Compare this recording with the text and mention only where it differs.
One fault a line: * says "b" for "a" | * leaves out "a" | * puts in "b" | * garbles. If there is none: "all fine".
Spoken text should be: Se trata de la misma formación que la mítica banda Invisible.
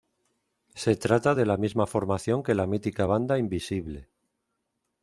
all fine